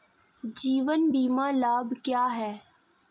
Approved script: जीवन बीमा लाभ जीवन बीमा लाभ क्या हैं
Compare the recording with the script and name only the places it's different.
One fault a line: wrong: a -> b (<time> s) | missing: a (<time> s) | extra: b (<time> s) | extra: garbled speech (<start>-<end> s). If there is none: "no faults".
missing: जीवन बीमा लाभ (1.9 s)